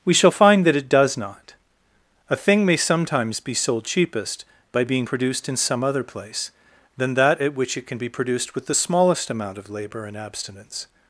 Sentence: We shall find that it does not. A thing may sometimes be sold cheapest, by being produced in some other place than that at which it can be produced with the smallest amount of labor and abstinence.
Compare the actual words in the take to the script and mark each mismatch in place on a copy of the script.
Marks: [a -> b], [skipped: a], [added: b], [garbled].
We shall find that it does not. A thing may sometimes be sold cheapest, by being produced in some other place than that at which it can be produced with the smallest amount of labor and abstinence.